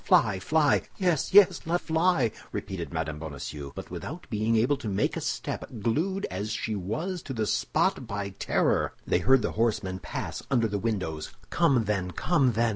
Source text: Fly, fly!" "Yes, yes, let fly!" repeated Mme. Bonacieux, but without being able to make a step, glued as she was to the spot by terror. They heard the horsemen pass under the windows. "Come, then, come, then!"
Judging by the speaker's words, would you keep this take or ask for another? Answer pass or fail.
pass